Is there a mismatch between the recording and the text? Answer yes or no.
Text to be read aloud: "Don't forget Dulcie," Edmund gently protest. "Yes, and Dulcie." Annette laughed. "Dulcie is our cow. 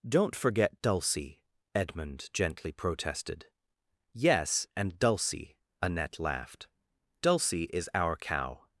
yes